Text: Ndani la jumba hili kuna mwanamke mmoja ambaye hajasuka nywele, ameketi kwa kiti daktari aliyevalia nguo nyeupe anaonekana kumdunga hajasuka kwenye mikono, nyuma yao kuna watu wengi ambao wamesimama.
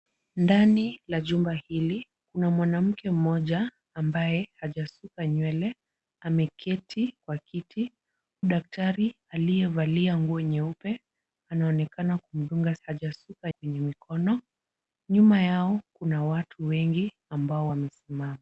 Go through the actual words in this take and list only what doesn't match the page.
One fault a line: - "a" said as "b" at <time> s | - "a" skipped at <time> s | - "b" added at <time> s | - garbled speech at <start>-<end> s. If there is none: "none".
none